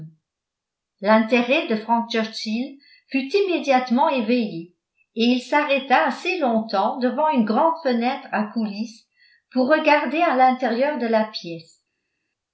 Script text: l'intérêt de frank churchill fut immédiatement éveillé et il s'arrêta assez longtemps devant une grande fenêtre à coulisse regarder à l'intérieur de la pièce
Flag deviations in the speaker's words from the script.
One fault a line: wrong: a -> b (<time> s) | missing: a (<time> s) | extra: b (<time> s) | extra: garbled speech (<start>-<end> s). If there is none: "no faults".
extra: pour (9.5 s)